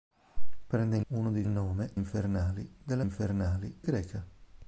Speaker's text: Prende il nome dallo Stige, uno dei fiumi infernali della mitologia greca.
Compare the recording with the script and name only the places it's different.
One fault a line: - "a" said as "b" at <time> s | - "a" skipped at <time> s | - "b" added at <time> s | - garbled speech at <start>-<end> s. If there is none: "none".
- "nome dallo Stige" skipped at 1.0 s
- "fiumi" said as "nome" at 1.4 s
- "mitologia" said as "infernali" at 3.0 s